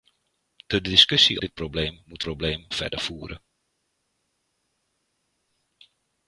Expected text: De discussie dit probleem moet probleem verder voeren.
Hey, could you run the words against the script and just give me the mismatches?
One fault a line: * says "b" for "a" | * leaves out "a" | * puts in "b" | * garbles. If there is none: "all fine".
all fine